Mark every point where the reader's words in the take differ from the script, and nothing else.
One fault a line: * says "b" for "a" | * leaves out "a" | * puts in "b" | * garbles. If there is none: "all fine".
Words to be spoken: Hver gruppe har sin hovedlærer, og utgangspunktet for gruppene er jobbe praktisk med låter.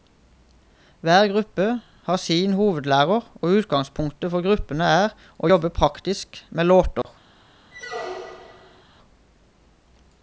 * puts in "å"